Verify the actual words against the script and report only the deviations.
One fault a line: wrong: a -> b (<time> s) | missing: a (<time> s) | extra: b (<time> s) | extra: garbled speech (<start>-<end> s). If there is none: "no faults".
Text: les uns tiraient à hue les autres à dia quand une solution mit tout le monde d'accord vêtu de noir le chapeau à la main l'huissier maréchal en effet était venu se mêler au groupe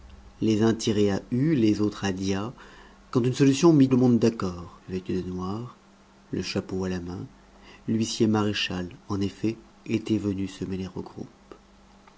missing: tout (3.9 s)